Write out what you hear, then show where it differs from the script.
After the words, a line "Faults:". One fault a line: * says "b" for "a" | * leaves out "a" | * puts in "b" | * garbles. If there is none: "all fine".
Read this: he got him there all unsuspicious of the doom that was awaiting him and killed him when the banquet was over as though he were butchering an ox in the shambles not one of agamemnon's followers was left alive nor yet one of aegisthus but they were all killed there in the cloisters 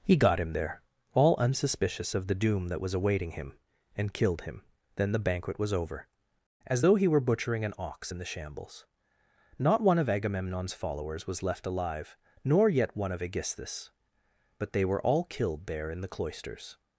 he got him there all unsuspicious of the doom that was awaiting him and killed him then the banquet was over as though he were butchering an ox in the shambles not one of agamemnon's followers was left alive nor yet one of aegisthus but they were all killed there in the cloisters
Faults:
* says "then" for "when"